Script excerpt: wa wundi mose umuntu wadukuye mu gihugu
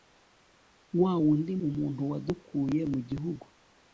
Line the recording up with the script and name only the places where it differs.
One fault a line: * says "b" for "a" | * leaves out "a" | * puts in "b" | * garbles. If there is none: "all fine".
* leaves out "mose"